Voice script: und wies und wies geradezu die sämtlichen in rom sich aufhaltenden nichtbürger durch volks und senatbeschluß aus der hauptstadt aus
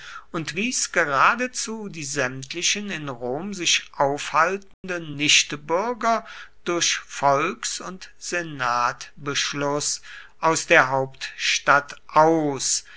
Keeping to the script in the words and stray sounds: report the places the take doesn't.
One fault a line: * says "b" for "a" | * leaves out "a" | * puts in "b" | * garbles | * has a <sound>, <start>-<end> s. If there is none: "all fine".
* leaves out "und wies"
* has a dropout, 4.7-4.8 s